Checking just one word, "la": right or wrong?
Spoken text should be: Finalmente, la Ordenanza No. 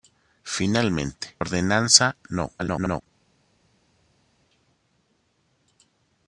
wrong